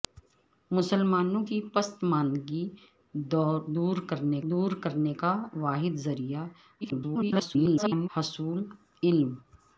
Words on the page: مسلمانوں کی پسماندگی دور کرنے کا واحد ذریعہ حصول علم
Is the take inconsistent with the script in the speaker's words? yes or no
yes